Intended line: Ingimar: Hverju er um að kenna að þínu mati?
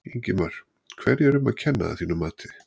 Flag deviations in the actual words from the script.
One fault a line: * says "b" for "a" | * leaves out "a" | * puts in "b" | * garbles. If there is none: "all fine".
all fine